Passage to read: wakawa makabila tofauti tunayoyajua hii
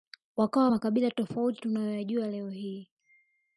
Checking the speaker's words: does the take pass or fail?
fail